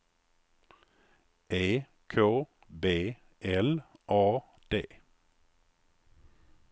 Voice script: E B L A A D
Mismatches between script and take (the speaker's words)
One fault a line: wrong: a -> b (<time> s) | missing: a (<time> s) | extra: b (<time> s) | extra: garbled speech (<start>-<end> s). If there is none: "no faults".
extra: K (2.1 s)
missing: A (4.4 s)